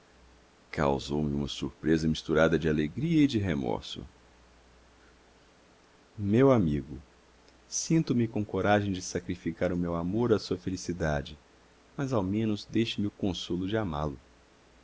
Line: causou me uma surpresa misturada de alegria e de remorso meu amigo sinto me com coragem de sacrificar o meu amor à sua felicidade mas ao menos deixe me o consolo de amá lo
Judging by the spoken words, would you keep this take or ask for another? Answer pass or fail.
pass